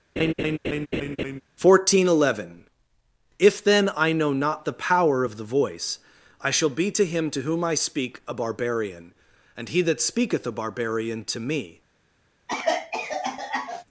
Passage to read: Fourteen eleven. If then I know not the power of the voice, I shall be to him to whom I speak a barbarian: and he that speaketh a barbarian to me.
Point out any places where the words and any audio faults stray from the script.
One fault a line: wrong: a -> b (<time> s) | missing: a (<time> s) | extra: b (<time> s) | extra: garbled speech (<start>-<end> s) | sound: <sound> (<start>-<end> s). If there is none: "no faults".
sound: laugh (0.2-1.4 s)
sound: cough (12.5-13.8 s)